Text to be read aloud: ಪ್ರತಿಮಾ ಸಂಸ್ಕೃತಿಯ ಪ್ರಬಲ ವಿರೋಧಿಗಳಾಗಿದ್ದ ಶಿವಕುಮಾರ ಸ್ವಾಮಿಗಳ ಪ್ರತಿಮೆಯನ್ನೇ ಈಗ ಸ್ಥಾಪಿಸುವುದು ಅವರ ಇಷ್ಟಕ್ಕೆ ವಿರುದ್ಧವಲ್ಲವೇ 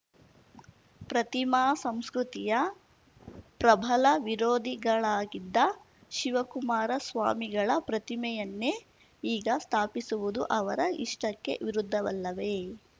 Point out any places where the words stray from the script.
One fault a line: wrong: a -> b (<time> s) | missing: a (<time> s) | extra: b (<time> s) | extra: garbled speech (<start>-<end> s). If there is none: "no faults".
no faults